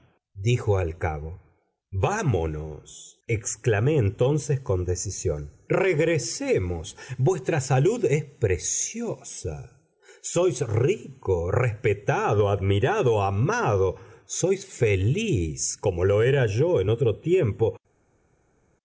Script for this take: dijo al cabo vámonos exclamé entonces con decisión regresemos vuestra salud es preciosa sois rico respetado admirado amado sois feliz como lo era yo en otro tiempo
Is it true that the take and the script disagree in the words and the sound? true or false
false